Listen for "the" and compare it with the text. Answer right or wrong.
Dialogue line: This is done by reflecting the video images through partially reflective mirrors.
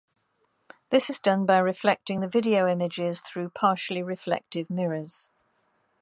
right